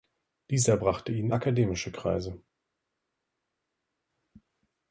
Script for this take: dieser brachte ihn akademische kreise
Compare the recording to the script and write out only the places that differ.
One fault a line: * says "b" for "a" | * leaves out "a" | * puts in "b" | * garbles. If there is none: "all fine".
all fine